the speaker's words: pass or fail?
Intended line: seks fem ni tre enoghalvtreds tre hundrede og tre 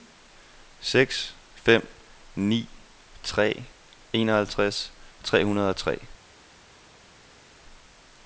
pass